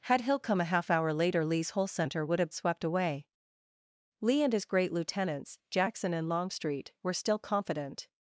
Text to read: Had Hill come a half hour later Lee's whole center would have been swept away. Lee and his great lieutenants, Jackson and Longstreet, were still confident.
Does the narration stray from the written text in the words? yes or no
yes